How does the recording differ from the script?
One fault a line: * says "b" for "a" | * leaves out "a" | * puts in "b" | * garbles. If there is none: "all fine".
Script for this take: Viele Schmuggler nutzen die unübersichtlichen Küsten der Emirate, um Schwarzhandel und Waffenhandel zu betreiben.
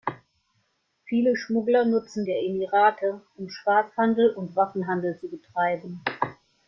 * leaves out "die unübersichtlichen Küsten"